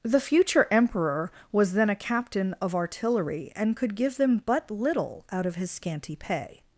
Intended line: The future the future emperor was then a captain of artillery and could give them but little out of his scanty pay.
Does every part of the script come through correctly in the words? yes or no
no